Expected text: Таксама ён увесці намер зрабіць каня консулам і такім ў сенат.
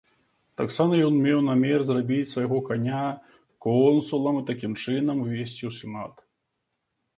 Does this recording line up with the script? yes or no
no